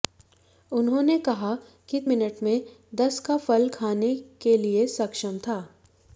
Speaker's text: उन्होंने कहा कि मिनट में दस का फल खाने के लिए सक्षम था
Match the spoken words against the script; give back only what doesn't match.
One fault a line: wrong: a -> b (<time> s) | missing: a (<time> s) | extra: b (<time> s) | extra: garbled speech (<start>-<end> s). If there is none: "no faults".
no faults